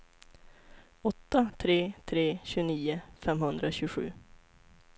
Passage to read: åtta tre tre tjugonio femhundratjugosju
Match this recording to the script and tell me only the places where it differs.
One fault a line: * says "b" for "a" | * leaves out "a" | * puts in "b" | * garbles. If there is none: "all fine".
all fine